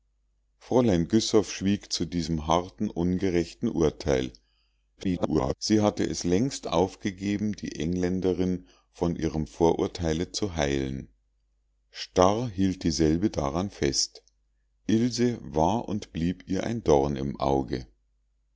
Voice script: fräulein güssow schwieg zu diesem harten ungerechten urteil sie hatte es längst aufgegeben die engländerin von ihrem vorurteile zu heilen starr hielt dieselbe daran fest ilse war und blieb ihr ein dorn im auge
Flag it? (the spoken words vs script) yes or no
yes